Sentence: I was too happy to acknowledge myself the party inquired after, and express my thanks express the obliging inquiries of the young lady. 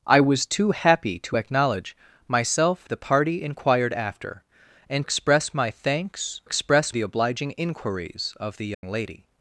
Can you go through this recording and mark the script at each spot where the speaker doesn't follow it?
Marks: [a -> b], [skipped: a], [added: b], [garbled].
I was too happy to acknowledge myself the party inquired after, and express my thanks express the obliging inquiries of the young lady.